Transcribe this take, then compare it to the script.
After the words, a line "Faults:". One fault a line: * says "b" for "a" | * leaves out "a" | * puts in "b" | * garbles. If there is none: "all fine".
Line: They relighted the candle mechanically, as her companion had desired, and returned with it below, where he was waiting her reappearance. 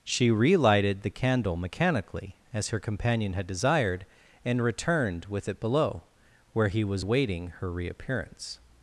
She relighted the candle mechanically, as her companion had desired, and returned with it below, where he was waiting her reappearance.
Faults:
* says "She" for "They"